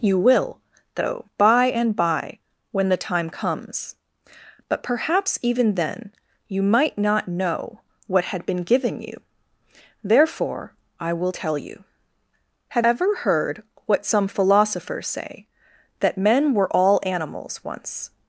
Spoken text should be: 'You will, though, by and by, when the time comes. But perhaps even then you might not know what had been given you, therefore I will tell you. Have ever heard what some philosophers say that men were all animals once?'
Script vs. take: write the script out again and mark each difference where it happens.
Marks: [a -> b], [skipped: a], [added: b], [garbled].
'You will, though, by and by, when the time comes. But perhaps even then you might not know what had been given you, therefore I will tell you. Have ever heard what some philosophers say that men were all animals once?'